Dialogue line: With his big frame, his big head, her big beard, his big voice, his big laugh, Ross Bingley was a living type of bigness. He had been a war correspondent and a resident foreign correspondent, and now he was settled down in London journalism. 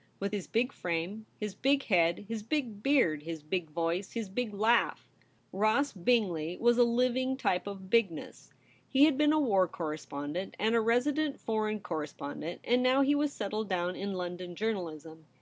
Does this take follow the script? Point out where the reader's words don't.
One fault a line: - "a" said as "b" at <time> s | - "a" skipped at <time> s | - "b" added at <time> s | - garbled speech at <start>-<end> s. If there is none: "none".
- "her" said as "his" at 2.3 s